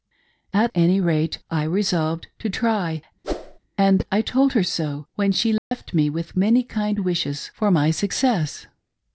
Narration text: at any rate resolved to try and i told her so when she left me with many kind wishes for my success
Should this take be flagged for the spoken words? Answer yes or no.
yes